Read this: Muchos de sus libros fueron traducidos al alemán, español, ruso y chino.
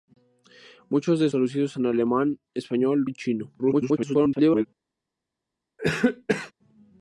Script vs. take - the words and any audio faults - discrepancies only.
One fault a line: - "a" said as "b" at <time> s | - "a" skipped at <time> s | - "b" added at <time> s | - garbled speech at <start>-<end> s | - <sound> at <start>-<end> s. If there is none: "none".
- "sus libros fueron" skipped at 1.3 s
- "ruso" skipped at 3.1 s
- garbled speech at 3.6-4.7 s
- cough at 5.8-6.5 s